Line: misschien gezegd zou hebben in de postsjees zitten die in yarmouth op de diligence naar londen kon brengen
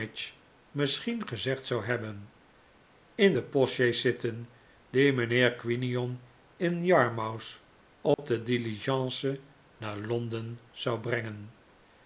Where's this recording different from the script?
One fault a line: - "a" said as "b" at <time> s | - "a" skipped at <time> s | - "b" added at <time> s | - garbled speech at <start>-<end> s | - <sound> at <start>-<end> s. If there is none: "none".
- "mijnheer quinion" added at 5.1 s
- dropout at 8.1-8.2 s
- "kon" said as "zou" at 10.7 s